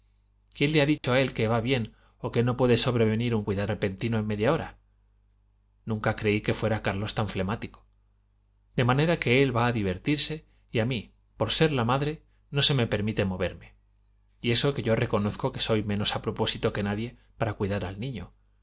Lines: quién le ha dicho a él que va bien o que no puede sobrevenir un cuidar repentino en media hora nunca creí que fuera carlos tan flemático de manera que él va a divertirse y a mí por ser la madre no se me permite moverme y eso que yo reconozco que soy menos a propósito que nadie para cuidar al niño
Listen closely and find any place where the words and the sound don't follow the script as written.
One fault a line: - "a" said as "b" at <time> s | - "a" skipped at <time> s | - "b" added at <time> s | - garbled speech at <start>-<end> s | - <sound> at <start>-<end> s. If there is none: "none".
- dropout at 1.0-1.0 s